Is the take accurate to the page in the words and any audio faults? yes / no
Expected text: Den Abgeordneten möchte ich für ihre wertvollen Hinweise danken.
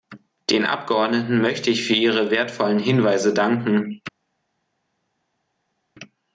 yes